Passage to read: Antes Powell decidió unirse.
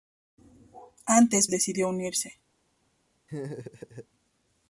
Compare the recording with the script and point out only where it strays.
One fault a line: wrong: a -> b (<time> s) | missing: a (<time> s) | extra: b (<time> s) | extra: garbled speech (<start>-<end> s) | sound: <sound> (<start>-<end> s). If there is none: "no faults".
missing: Powell (1.5 s)
sound: laugh (3.3-4.1 s)